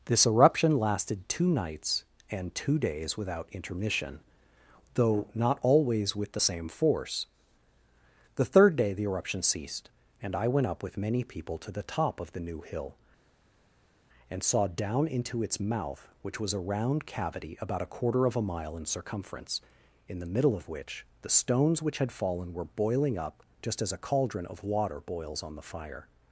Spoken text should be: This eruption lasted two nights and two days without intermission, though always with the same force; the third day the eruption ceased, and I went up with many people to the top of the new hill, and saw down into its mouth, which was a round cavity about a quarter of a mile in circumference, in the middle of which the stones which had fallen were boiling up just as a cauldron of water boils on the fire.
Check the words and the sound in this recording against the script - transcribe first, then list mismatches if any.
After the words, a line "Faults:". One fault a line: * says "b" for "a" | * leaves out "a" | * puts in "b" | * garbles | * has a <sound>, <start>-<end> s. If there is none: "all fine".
This eruption lasted two nights and two days without intermission, though not always with the same force; the third day the eruption ceased, and I went up with many people to the top of the new hill, and saw down into its mouth, which was a round cavity about a quarter of a mile in circumference, in the middle of which the stones which had fallen were boiling up just as a cauldron of water boils on the fire.
Faults:
* puts in "not"